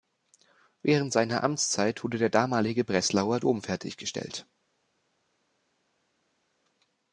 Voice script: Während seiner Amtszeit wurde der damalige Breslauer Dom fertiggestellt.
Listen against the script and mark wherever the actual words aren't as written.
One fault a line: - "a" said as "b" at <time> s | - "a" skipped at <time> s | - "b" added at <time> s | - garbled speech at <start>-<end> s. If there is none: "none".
none